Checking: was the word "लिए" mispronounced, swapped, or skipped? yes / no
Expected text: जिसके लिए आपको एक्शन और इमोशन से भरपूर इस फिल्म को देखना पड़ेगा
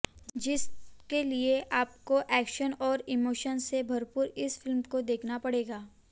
no